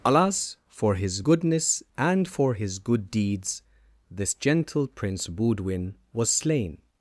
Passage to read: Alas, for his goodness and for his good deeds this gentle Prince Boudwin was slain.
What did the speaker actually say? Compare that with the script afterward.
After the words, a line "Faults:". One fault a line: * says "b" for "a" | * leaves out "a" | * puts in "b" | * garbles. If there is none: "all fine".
Alas, for his goodness and for his good deeds this gentle Prince Boudwin was slain.
Faults:
all fine